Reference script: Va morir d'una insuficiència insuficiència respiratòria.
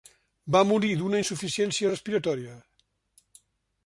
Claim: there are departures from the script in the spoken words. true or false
true